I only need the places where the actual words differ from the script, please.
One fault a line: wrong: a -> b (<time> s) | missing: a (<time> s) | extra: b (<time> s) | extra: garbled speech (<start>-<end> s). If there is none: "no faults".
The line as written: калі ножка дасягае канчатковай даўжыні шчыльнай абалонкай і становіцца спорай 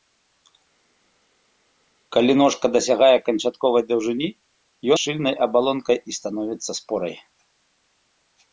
no faults